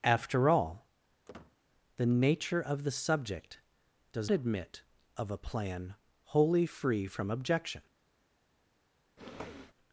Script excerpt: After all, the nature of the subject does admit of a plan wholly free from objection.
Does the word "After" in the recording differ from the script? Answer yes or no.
no